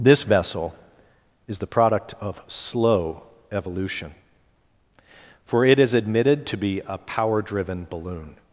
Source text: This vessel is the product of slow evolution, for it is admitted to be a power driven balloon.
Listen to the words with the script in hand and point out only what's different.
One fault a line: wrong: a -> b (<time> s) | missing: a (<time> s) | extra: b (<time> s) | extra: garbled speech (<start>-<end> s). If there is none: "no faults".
no faults